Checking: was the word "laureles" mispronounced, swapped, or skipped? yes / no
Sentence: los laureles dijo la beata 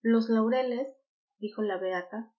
no